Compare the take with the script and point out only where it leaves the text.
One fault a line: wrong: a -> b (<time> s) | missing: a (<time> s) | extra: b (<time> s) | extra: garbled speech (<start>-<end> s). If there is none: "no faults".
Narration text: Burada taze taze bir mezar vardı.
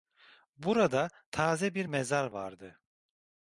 missing: taze (1.7 s)